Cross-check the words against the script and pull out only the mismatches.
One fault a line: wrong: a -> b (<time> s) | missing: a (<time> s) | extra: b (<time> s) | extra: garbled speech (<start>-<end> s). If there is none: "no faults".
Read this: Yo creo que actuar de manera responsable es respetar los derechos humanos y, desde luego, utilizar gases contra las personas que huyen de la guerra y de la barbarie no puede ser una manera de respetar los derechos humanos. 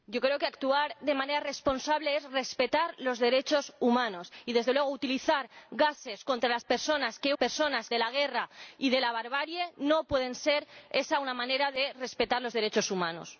wrong: huyen -> personas (7.4 s)